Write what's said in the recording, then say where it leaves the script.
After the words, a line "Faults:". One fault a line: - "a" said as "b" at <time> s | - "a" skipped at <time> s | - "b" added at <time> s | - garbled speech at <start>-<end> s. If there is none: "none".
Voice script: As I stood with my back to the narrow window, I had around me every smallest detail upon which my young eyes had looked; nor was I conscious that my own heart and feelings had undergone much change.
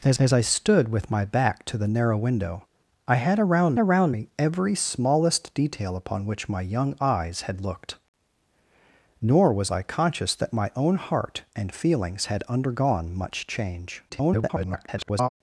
As as I stood with my back to the narrow window, I had around around me every smallest detail upon which my young eyes had looked; nor was I conscious that my own heart and feelings had undergone much change. [garbled]
Faults:
- "as" added at 0.2 s
- "around" added at 3.8 s
- garbled speech at 14.1-15.3 s